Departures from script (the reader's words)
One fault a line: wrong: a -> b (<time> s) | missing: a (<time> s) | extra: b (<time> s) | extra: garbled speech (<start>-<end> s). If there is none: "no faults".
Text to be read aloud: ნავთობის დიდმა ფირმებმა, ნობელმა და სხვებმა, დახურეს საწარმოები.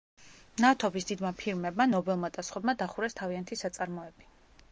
extra: თავიანთი (3.2 s)